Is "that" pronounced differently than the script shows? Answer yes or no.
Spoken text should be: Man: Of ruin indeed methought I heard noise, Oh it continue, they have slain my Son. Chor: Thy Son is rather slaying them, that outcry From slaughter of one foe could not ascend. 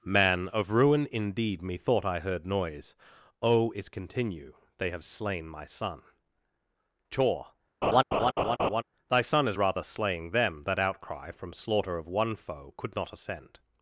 no